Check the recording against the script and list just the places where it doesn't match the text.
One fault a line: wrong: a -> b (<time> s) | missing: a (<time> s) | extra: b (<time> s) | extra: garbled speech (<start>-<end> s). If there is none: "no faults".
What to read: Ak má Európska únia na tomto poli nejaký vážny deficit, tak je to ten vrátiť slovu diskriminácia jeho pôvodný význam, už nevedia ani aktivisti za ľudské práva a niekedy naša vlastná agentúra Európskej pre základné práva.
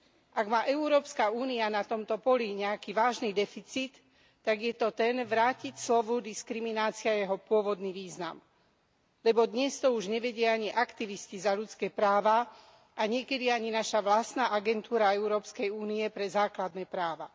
extra: lebo dnes to (9.2 s)
extra: ani (13.5 s)
extra: únie (15.7 s)